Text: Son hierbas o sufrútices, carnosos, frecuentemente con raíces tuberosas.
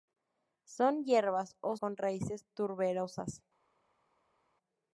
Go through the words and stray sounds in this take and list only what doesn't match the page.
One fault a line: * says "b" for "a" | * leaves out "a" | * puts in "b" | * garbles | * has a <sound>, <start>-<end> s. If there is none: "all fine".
* leaves out "sufrútices carnosos frecuentemente"